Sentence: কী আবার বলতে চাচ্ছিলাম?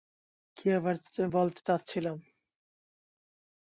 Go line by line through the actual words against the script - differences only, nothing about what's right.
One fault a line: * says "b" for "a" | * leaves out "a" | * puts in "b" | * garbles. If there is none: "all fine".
all fine